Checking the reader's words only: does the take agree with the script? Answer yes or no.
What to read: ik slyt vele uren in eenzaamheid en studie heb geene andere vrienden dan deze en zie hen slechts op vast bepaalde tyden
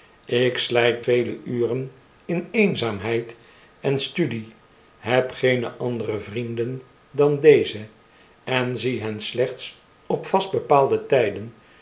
yes